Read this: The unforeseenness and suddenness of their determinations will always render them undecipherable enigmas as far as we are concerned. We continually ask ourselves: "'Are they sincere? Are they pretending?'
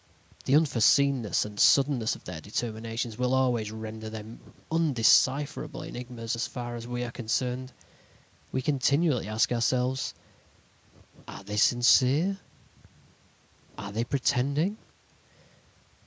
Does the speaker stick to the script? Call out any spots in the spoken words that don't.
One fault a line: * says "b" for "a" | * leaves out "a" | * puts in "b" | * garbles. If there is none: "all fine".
all fine